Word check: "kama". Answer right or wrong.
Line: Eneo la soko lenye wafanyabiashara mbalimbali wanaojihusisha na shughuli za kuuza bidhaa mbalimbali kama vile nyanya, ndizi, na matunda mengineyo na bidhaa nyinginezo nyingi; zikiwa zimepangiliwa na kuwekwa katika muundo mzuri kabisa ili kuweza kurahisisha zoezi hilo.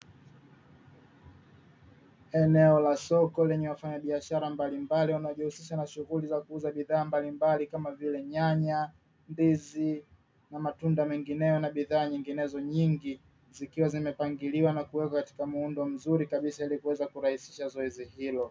right